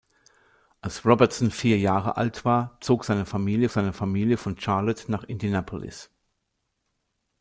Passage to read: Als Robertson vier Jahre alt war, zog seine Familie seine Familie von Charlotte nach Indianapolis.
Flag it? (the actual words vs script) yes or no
no